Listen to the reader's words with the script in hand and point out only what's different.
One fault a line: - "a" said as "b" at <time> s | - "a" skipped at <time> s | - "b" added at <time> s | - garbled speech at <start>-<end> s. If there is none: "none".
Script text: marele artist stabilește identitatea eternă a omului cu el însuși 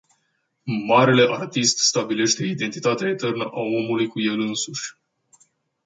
none